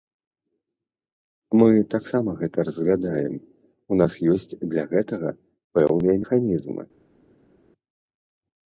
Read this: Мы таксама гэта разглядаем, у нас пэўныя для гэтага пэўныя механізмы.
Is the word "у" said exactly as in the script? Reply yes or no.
yes